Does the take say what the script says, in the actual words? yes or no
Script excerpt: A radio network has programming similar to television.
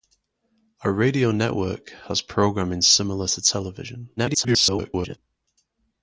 no